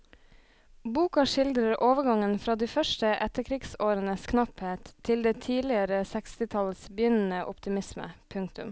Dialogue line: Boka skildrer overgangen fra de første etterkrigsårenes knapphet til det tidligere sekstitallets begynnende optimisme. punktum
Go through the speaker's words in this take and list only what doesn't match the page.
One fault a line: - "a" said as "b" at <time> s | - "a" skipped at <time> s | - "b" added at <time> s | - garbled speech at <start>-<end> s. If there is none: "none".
none